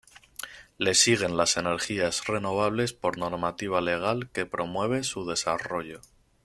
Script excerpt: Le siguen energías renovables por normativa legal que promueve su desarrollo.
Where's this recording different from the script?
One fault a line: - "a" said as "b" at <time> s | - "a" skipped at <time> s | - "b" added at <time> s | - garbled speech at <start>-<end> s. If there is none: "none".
- "las" added at 1.4 s